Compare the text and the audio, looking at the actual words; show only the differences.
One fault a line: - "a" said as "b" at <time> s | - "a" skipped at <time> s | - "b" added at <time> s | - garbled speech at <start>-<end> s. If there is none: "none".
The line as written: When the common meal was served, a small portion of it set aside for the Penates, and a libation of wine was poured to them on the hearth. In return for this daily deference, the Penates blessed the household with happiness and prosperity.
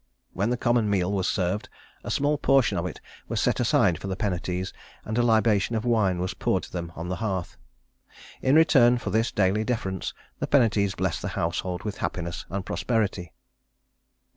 - "was" added at 3.3 s